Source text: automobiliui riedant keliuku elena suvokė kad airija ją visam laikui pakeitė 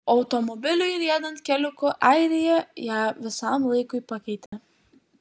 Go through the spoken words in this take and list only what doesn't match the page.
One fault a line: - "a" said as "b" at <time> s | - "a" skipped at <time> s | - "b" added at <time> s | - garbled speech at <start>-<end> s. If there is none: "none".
- "elena suvokė kad" skipped at 1.9 s